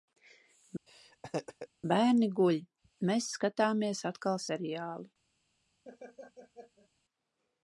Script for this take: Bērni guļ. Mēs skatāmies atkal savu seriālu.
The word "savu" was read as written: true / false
false